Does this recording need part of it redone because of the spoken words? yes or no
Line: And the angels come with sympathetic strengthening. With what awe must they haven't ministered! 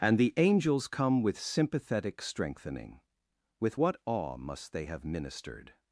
yes